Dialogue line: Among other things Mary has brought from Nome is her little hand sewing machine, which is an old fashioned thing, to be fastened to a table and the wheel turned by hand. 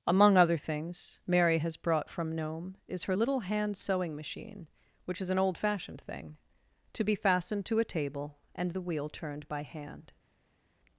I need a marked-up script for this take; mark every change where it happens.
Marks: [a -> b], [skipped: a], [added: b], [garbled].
Among other things Mary has brought from Nome is her little hand sewing machine, which is an old fashioned thing, to be fastened to a table and the wheel turned by hand.